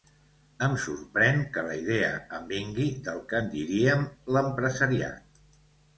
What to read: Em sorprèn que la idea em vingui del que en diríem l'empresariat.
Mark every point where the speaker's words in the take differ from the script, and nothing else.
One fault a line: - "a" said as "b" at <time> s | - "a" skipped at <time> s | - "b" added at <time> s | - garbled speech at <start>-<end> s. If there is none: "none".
none